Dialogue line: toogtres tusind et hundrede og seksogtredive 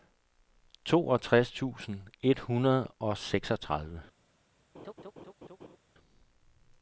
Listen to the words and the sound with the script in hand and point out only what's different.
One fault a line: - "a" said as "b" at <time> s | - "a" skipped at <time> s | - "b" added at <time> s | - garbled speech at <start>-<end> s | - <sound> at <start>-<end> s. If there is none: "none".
- laugh at 4.7-5.8 s